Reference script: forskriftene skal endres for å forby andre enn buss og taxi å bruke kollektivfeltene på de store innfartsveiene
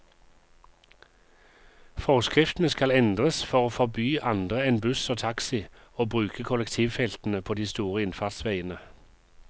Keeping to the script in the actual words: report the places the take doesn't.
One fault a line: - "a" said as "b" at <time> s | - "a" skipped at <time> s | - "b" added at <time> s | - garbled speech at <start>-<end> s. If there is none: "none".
none